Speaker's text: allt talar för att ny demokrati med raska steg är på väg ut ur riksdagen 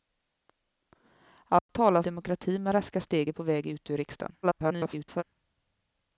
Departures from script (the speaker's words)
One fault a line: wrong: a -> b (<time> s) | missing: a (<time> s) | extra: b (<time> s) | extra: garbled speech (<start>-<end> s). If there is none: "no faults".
missing: för att ny (2.0 s)
extra: garbled speech (4.4-5.2 s)